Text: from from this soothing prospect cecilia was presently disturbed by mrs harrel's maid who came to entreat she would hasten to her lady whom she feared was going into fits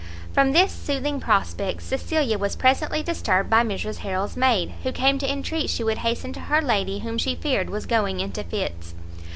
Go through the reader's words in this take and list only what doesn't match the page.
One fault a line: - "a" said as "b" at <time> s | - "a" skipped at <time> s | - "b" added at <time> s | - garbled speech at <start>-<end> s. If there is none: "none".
- "from" skipped at 0.5 s